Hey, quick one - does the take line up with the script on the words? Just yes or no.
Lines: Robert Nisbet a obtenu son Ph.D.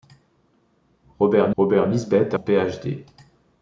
no